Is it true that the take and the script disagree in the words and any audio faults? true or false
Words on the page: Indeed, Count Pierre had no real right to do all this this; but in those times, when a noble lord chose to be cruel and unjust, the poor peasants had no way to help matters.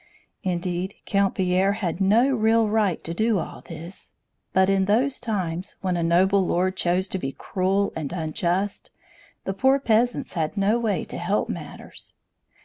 true